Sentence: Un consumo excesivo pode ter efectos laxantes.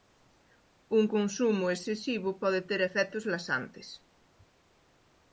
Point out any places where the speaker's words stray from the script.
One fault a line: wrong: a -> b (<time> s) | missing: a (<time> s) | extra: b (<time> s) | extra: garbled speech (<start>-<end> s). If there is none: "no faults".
no faults